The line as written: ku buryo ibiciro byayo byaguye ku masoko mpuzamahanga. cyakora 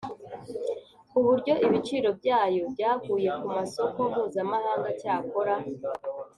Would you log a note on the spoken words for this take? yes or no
no